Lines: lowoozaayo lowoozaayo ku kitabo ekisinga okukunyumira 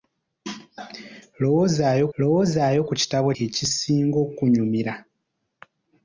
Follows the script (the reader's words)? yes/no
yes